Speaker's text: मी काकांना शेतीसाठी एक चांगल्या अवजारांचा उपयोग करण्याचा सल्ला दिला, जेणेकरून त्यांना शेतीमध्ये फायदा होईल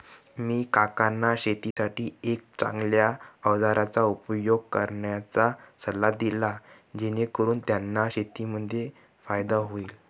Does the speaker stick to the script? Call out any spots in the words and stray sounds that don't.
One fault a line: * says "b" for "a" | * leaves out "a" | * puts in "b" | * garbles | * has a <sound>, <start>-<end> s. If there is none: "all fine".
* has a dropout, 1.7-1.8 s